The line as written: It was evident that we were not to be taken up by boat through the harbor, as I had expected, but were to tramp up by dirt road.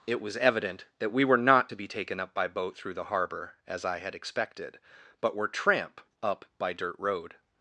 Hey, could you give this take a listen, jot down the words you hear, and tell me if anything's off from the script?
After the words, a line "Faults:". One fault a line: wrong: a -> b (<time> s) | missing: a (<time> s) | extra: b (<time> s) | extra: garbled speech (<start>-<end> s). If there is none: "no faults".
It was evident that we were not to be taken up by boat through the harbor, as I had expected, but were tramp up by dirt road.
Faults:
missing: to (5.5 s)